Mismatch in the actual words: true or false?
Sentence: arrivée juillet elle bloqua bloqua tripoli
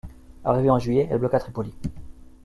true